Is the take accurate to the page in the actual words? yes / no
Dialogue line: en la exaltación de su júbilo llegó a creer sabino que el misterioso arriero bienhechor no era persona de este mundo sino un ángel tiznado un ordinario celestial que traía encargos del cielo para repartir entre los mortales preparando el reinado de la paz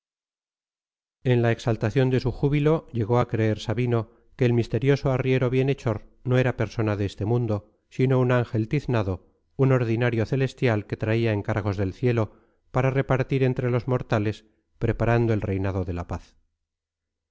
yes